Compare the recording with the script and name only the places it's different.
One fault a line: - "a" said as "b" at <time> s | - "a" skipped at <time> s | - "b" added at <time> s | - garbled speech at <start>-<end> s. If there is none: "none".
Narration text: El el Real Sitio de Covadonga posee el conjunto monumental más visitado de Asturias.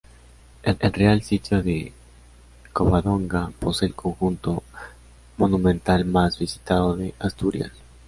none